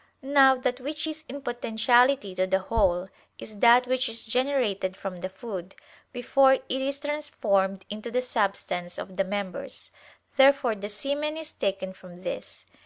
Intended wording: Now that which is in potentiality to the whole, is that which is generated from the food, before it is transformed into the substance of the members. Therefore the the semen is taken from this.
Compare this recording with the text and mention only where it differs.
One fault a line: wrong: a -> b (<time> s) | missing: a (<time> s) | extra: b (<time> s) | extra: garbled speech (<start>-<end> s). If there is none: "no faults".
missing: the (10.9 s)